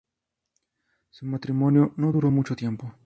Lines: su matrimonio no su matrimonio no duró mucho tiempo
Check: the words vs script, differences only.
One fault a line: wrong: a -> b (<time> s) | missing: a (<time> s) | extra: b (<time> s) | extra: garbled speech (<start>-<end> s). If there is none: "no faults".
missing: su matrimonio no (2.1 s)